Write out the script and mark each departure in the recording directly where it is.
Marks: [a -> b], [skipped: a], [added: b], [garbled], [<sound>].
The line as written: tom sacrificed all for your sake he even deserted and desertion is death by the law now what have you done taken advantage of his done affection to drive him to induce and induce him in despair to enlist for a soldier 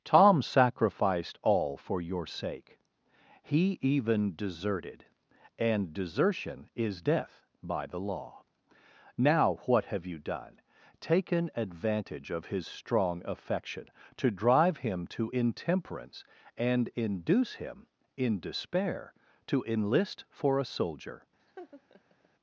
tom sacrificed all for your sake he even deserted and desertion is death by the law now what have you done taken advantage of his [done -> strong] affection to drive him to [induce -> intemperance] and induce him in despair to enlist for a soldier [laugh]